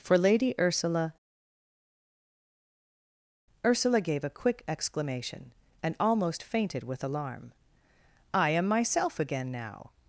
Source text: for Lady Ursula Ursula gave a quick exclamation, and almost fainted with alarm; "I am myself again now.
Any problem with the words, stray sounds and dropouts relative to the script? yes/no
no